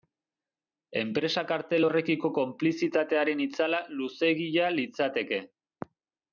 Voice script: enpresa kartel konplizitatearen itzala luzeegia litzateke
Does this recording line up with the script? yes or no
no